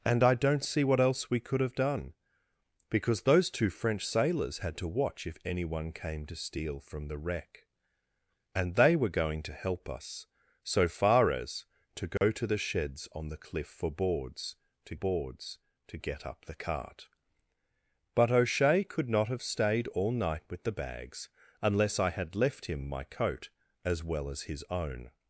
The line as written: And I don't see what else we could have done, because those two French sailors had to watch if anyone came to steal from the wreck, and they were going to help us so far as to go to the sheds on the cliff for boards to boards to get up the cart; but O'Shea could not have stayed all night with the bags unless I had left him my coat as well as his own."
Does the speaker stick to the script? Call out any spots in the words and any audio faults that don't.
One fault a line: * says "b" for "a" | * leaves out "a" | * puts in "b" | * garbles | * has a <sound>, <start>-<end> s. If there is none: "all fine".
* has a dropout, 12.2-12.2 s